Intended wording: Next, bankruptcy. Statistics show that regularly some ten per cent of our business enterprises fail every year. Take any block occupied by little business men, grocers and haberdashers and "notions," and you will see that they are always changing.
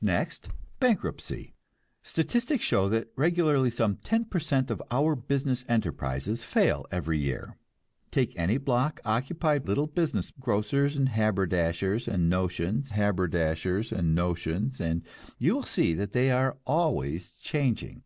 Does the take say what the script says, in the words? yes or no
no